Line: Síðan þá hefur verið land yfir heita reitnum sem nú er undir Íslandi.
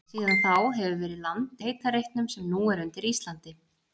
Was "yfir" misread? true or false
true